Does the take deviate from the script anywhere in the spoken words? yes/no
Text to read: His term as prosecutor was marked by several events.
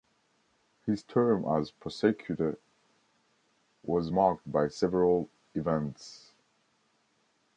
no